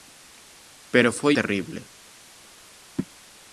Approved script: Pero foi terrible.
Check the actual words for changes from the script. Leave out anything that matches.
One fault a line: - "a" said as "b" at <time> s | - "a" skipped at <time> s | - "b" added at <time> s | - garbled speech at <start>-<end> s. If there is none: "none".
none